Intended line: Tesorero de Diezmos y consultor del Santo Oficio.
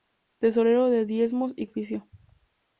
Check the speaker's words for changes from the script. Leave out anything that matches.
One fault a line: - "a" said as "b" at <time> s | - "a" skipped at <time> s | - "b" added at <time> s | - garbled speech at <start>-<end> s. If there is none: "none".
- "consultor del Santo" skipped at 1.7 s